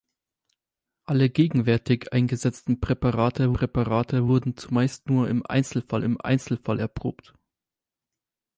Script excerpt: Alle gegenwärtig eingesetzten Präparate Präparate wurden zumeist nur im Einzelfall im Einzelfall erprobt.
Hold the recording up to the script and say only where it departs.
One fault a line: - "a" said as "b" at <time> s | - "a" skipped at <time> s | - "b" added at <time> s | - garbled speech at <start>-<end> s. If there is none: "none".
none